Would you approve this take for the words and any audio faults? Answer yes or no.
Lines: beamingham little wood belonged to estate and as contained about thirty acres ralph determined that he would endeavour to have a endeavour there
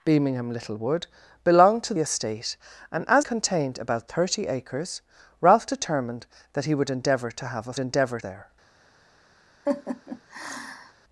no